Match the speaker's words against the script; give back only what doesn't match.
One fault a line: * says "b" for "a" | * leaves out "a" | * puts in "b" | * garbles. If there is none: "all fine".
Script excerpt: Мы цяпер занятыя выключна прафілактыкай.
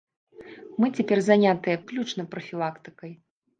all fine